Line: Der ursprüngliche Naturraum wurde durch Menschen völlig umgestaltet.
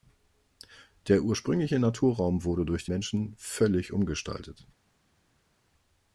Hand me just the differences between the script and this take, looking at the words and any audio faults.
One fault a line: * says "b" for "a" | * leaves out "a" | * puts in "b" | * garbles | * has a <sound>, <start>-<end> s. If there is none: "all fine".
all fine